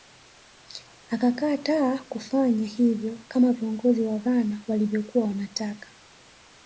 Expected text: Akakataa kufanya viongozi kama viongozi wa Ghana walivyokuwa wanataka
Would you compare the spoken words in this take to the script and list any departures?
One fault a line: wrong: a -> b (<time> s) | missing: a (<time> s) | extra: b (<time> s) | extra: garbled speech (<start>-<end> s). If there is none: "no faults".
wrong: viongozi -> hivyo (2.7 s)